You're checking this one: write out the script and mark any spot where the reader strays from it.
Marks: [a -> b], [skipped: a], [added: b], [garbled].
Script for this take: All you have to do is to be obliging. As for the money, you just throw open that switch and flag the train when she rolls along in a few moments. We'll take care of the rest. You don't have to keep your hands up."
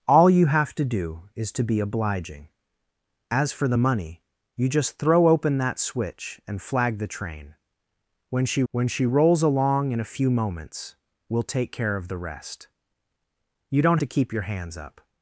All you have to do is to be obliging. As for the money, you just throw open that switch and flag the train when she [added: when she] rolls along in a few moments. We'll take care of the rest. You don't [skipped: have] to keep your hands up."